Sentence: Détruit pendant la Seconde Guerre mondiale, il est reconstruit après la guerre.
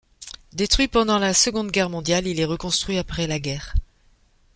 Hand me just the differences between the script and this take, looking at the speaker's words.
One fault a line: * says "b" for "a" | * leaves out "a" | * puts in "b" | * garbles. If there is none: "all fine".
all fine